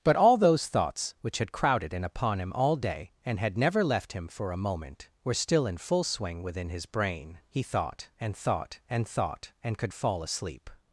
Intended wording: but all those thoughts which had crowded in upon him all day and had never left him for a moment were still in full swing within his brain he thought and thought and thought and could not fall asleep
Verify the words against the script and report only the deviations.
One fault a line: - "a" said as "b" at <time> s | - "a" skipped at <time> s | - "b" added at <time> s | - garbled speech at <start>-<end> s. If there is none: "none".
- "not" skipped at 9.9 s